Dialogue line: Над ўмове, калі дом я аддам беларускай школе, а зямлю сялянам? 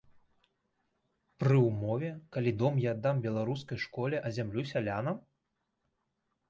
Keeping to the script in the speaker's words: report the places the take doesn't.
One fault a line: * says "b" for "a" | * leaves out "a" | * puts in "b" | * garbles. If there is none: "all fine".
* says "Пры" for "Над"